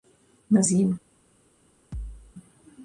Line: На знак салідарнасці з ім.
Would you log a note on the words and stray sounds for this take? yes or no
yes